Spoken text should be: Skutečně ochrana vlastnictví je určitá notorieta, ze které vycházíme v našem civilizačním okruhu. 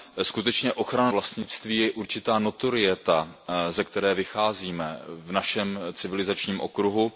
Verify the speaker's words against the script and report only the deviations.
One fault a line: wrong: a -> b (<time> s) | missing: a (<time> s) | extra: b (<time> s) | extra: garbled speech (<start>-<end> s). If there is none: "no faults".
no faults